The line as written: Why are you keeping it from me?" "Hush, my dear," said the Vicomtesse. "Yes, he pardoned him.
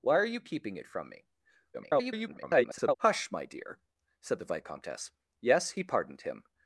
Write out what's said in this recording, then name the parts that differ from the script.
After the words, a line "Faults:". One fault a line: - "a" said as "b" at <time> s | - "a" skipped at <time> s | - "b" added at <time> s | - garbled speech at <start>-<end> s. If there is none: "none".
Why are you keeping it from me?" [garbled] "Hush, my dear," said the Vicomtesse. "Yes, he pardoned him.
Faults:
- garbled speech at 1.7-3.0 s